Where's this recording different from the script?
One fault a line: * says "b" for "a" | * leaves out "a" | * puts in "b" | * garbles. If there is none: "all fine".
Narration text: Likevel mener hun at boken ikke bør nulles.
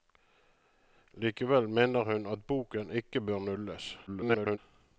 * garbles